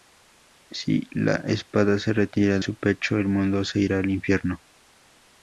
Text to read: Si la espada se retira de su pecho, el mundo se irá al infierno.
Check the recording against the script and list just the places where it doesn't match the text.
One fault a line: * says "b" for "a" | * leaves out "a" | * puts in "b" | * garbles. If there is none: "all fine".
* leaves out "de"